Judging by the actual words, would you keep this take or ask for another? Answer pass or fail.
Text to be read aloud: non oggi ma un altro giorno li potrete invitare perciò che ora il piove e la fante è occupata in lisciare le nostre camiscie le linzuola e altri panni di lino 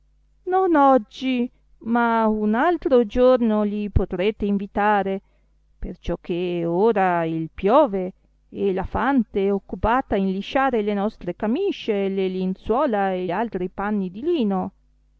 pass